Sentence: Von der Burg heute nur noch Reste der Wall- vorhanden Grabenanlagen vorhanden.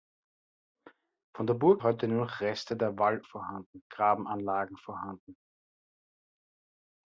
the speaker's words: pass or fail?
pass